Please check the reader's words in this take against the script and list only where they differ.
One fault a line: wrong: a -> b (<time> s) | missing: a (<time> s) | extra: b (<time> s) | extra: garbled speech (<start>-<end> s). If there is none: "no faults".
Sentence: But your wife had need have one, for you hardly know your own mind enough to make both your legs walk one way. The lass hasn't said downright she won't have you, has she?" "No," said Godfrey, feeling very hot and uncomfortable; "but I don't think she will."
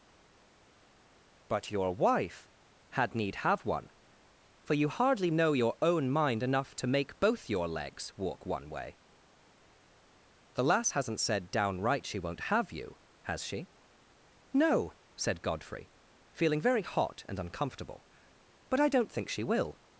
no faults